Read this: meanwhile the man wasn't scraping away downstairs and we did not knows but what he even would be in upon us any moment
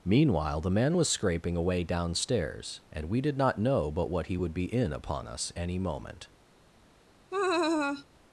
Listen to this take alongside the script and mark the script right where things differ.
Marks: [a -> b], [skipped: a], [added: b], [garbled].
meanwhile the man [wasn't -> was] scraping away downstairs and we did not [knows -> know] but what he [skipped: even] would be in upon us any moment